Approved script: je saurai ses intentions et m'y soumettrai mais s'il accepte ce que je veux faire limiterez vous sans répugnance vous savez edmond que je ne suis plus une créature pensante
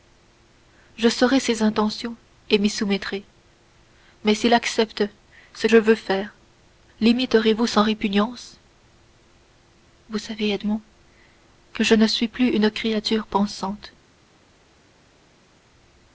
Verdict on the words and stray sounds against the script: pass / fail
fail